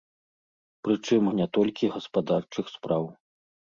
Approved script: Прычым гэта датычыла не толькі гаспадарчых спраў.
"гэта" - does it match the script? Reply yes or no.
no